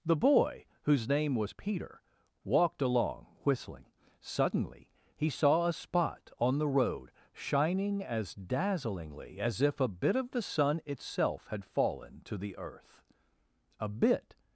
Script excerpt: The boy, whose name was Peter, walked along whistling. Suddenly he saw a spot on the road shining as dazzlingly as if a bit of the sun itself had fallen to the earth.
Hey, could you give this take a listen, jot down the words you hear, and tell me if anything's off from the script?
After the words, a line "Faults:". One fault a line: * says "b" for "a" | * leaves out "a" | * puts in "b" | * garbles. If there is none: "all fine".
The boy, whose name was Peter, walked along whistling. Suddenly he saw a spot on the road shining as dazzlingly as if a bit of the sun itself had fallen to the earth. "A bit
Faults:
* puts in "A bit"